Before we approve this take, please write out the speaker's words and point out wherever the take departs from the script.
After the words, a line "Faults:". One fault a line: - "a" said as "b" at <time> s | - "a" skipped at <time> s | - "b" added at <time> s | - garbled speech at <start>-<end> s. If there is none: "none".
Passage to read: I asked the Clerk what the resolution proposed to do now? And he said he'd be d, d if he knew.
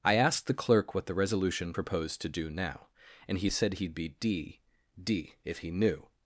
I asked the Clerk what the resolution proposed to do now? And he said he'd be d, d if he knew.
Faults:
none